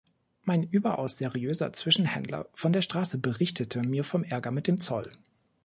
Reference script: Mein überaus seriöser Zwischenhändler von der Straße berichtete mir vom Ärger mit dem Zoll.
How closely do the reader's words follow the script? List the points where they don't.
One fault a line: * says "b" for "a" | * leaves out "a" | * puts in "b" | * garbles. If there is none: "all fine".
all fine